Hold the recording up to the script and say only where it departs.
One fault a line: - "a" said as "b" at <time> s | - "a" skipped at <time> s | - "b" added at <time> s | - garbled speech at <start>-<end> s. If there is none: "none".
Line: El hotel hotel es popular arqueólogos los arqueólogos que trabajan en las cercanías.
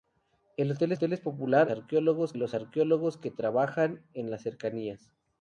none